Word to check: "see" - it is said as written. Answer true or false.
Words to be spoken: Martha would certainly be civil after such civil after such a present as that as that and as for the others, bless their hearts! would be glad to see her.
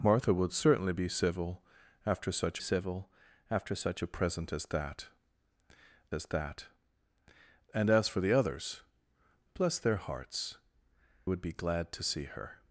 true